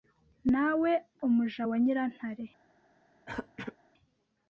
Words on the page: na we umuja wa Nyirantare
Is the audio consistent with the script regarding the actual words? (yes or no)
yes